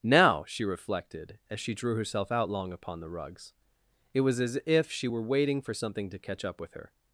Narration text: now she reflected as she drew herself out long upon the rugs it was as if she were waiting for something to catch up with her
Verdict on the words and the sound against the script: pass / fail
pass